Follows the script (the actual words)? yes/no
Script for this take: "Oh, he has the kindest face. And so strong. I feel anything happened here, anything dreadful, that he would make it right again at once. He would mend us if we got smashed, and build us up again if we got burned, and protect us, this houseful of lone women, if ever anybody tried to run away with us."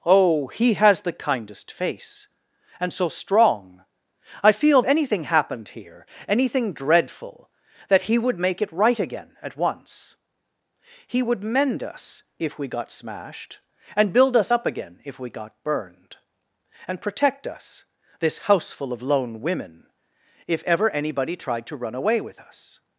yes